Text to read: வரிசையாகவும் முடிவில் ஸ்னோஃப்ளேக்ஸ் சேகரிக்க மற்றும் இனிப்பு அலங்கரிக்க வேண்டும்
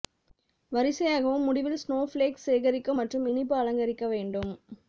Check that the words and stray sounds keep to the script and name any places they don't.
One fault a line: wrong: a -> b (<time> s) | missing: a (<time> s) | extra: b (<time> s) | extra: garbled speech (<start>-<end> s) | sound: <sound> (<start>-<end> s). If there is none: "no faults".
no faults